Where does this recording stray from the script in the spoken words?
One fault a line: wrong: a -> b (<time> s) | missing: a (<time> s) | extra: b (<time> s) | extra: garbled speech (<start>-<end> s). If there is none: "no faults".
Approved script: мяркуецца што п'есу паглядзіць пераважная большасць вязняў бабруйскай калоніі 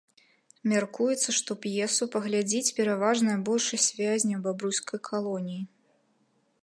no faults